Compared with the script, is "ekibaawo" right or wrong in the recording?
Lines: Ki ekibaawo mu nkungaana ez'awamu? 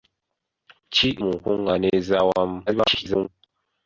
wrong